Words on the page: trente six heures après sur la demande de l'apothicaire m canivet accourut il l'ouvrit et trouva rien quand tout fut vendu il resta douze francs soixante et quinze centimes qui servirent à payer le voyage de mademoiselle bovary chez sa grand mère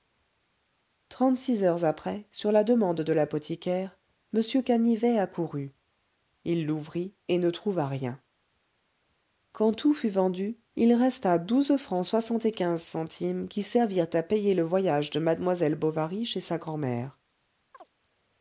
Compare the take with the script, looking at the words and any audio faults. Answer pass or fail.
fail